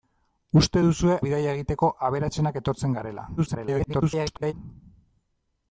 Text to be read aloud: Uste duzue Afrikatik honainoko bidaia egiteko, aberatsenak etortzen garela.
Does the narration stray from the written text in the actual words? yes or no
yes